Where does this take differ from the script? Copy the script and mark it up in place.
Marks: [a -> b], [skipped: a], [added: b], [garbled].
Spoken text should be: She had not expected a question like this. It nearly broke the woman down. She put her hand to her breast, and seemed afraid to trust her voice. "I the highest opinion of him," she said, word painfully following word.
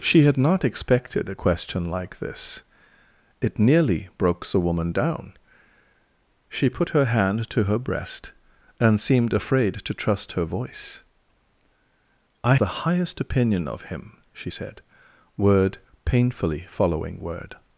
She had not expected a question like this. It nearly broke the woman down. She put her hand to her breast, and seemed afraid to trust her voice. "I the highest opinion of him," she said, word painfully following word.